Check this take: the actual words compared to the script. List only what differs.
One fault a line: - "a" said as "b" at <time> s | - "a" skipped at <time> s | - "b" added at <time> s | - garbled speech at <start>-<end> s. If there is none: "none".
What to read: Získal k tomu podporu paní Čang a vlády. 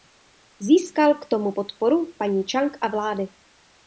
none